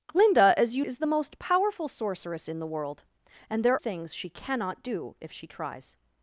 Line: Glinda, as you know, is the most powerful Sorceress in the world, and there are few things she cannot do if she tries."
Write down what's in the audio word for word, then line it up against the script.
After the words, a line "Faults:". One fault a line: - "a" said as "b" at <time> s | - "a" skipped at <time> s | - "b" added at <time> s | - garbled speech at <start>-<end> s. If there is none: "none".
Glinda, as you is the most powerful Sorceress in the world, and there things she cannot do if she tries."
Faults:
- "know" skipped at 0.8 s
- "are few" skipped at 3.8 s